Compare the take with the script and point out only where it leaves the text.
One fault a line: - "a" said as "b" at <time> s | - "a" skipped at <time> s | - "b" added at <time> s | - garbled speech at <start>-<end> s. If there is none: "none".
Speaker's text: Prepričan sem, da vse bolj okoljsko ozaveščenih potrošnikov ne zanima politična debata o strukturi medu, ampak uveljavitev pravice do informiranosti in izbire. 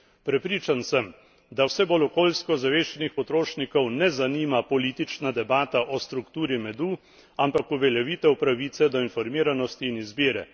none